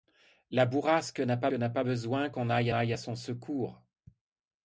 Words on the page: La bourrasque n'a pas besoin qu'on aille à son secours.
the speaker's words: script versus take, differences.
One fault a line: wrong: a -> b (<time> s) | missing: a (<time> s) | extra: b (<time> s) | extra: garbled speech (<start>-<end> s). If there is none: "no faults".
extra: n'a pas (1.5 s)
extra: aille (2.7 s)